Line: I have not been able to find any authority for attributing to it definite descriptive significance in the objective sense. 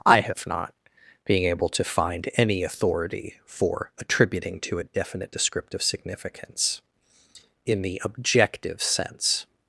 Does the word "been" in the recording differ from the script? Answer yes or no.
yes